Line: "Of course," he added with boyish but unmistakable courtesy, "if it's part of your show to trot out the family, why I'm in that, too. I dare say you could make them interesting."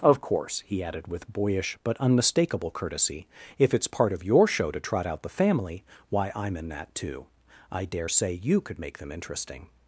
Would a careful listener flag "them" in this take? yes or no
no